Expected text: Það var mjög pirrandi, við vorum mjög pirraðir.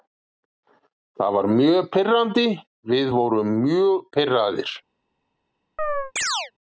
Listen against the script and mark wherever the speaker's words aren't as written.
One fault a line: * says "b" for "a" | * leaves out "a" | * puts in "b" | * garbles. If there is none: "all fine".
all fine